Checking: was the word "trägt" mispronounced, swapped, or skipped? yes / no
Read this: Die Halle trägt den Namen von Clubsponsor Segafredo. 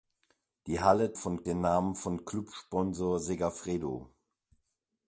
yes